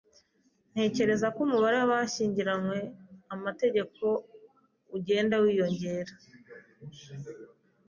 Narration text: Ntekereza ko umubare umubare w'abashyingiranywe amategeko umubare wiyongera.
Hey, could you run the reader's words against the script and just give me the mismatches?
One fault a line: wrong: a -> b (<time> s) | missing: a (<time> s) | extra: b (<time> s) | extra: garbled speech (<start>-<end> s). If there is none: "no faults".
missing: umubare (1.8 s)
wrong: umubare -> ugenda (5.0 s)